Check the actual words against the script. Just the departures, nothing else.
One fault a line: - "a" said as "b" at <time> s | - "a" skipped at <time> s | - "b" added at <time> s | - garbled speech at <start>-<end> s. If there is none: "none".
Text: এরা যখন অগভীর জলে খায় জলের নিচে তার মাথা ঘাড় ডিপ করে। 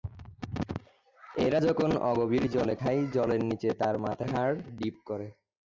none